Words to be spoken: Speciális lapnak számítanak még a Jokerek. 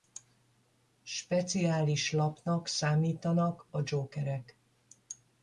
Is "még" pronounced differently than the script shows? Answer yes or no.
yes